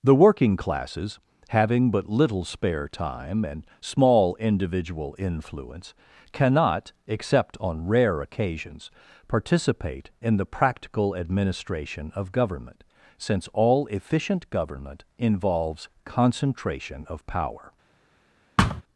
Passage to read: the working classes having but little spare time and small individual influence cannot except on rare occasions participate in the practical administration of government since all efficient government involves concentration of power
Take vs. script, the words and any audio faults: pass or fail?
fail